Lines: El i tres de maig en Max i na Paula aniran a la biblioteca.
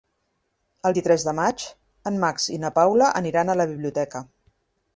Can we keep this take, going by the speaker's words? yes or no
yes